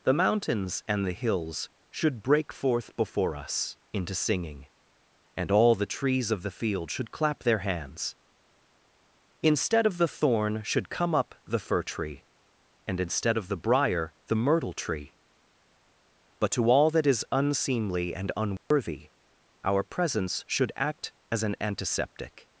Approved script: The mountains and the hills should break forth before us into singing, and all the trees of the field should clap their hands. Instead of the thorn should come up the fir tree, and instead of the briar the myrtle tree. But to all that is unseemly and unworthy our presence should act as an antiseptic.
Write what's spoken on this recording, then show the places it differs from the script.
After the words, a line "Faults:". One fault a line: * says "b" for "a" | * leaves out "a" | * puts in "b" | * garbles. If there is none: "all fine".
The mountains and the hills should break forth before us into singing, and all the trees of the field should clap their hands. Instead of the thorn should come up the fir tree, and instead of the briar the myrtle tree. But to all that is unseemly and unworthy our presence should act as an antiseptic.
Faults:
all fine